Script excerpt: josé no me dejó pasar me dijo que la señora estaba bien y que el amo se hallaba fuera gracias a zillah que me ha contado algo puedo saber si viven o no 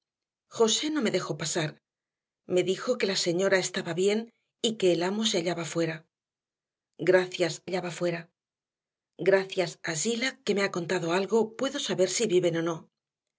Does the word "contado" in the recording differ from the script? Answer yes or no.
no